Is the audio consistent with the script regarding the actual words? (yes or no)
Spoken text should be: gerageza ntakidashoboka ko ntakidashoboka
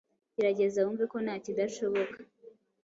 no